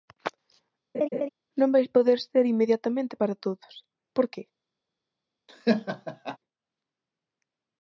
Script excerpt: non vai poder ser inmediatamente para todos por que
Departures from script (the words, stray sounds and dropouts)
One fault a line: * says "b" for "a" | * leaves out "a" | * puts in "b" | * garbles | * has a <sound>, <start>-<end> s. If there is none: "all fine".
* has a laugh, 0.9-1.3 s
* has a laugh, 5.5-6.4 s